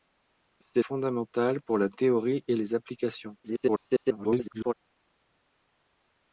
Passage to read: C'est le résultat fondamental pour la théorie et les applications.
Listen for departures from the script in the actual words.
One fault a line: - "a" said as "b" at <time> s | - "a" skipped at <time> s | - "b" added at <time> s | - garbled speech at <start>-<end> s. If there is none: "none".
- "le résultat" skipped at 0.8 s
- garbled speech at 3.4-4.7 s